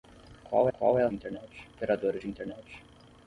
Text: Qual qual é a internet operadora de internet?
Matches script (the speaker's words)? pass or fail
pass